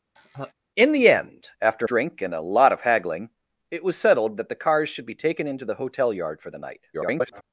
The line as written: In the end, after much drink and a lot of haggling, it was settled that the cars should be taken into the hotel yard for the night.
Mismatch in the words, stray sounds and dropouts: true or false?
true